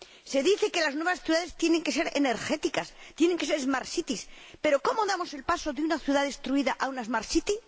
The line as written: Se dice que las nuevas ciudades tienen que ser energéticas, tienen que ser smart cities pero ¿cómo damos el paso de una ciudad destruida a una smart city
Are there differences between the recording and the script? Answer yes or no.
no